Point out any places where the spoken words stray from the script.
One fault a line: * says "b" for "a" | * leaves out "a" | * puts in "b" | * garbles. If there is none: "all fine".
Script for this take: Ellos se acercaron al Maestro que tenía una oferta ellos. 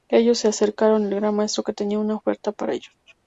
* puts in "Gran"
* puts in "para"